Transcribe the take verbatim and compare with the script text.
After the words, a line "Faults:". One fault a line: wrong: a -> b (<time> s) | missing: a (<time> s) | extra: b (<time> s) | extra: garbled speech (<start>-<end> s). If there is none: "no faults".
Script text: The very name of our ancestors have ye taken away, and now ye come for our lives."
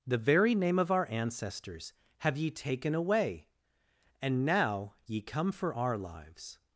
The very name of our ancestors have ye taken away, and now ye come for our lives."
Faults:
no faults